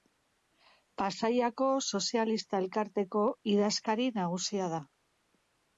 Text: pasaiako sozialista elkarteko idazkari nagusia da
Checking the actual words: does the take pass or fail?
pass